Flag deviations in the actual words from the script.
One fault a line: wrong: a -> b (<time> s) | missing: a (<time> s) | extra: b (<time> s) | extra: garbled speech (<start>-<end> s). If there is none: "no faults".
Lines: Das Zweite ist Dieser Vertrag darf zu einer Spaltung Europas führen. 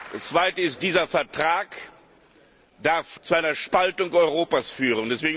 no faults